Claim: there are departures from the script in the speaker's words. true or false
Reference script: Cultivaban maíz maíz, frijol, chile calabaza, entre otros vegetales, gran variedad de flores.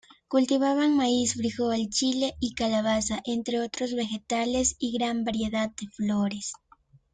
true